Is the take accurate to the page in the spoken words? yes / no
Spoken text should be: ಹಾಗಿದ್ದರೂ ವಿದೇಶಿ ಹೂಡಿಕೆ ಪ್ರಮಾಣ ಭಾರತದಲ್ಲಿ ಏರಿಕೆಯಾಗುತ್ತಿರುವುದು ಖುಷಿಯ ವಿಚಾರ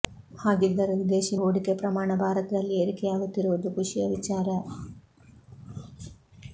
yes